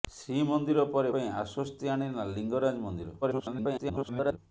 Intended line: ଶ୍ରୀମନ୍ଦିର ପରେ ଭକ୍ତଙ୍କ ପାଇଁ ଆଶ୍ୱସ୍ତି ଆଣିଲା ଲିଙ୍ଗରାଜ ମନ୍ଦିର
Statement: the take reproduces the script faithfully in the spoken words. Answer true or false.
false